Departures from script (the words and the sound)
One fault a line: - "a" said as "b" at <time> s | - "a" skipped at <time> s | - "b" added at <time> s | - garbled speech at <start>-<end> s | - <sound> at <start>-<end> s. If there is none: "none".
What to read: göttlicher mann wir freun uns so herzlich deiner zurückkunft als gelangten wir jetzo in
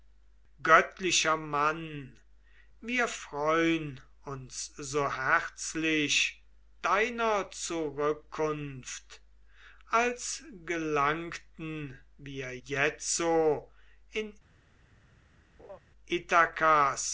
- laugh at 15.6-15.8 s